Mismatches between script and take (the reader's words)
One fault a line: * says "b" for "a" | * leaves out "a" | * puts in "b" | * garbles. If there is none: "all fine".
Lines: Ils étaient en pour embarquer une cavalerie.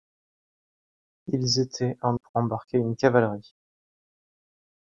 all fine